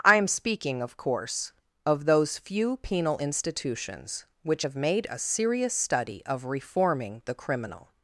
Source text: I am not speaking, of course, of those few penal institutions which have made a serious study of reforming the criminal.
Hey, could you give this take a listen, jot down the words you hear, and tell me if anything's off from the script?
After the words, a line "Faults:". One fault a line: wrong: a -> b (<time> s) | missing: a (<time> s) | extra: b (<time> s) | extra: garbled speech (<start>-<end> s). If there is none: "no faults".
I am speaking, of course, of those few penal institutions which have made a serious study of reforming the criminal.
Faults:
missing: not (0.3 s)